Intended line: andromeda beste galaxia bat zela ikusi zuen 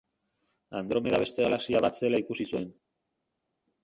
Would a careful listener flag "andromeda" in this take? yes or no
no